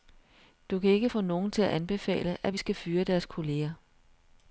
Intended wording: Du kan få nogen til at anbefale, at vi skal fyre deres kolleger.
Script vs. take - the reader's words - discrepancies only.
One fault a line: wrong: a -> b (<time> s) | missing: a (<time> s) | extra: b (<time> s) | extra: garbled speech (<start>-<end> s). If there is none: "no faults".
extra: ikke (0.9 s)